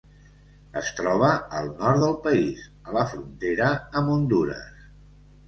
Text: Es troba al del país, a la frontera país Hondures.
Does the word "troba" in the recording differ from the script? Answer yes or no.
no